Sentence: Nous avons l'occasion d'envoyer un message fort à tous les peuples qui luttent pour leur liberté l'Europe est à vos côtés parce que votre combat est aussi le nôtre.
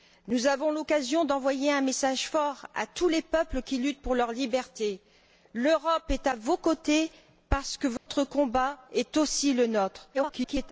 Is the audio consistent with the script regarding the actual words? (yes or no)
no